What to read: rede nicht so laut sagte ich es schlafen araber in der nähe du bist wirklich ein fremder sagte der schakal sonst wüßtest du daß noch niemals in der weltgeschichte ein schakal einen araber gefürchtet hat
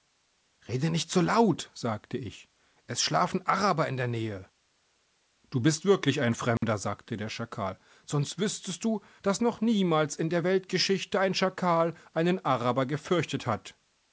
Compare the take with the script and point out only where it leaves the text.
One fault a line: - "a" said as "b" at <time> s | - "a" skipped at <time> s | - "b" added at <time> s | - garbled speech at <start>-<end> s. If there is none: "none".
none